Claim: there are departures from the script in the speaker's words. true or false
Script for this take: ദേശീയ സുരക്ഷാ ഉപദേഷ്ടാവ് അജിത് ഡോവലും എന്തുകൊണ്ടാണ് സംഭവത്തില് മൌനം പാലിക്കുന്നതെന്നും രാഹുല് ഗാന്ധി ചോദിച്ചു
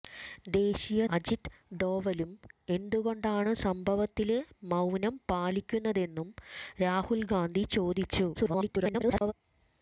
true